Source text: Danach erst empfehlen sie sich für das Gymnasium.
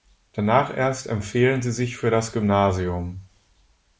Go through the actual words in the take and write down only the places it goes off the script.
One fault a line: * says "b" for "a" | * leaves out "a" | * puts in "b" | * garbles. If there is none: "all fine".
all fine